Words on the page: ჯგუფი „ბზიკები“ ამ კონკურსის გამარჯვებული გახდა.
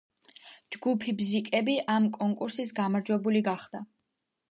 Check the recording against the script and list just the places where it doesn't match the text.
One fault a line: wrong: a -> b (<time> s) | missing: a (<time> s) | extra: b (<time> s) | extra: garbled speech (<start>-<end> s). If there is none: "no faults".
no faults